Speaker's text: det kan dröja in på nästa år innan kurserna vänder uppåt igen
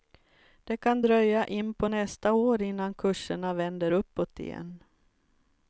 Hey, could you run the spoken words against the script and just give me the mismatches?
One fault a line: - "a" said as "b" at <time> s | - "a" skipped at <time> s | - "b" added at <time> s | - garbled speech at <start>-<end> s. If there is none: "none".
none